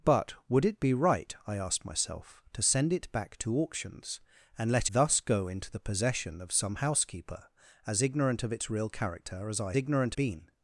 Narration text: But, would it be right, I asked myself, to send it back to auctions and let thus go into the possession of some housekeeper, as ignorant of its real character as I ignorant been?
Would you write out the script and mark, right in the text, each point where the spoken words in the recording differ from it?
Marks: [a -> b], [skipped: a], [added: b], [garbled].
But, would it be right, I asked myself, to send it back to auctions and let thus go into the possession of some housekeeper, as ignorant of its real character as I ignorant been?